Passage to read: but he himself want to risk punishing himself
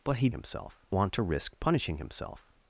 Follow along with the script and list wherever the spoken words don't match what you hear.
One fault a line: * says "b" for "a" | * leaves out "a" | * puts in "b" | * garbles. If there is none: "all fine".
all fine